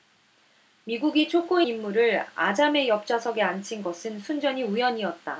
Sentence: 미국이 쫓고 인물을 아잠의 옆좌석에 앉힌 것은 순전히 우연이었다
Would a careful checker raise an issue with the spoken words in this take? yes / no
no